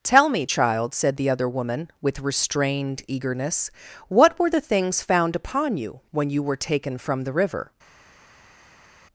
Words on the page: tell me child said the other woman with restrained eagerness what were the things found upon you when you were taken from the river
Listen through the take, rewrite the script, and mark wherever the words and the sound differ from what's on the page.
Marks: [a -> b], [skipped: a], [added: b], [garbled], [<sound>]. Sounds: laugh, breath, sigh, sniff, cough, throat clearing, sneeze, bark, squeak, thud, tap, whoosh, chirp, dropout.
tell me child said the other woman with restrained eagerness what were the things found upon you when you were taken from the river